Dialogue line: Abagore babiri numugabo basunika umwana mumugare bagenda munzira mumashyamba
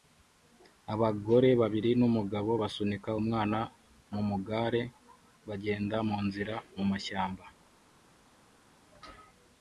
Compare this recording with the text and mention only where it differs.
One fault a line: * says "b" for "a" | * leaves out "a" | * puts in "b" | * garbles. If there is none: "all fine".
all fine